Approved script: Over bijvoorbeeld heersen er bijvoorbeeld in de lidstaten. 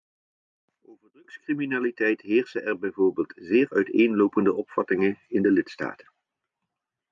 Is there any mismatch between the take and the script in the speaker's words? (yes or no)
yes